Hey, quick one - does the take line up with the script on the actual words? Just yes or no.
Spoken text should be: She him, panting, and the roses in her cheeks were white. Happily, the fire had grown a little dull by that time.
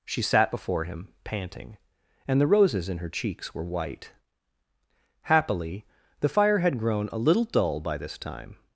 no